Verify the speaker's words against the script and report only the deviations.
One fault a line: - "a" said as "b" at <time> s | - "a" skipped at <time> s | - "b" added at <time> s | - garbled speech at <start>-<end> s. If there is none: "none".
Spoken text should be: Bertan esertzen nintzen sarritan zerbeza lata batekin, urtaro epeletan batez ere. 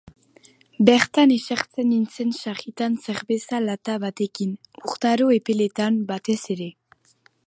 none